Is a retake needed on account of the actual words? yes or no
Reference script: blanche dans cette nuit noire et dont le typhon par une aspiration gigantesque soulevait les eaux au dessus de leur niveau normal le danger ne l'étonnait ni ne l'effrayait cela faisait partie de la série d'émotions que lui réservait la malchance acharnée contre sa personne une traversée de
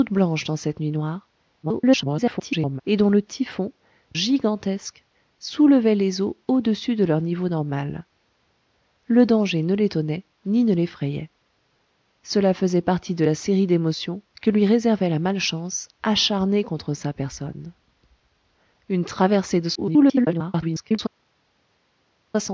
yes